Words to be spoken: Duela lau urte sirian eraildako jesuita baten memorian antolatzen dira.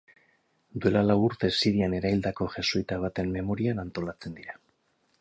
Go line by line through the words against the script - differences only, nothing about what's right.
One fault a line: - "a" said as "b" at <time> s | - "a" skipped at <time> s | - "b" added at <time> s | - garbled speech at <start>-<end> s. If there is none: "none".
none